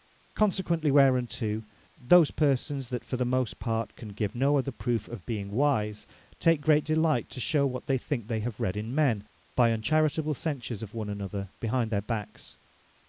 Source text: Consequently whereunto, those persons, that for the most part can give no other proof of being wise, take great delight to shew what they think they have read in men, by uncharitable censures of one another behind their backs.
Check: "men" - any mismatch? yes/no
no